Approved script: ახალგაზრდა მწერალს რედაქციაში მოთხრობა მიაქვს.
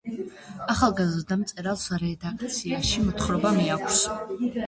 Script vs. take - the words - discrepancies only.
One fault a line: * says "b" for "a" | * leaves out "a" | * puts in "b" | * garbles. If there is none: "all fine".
all fine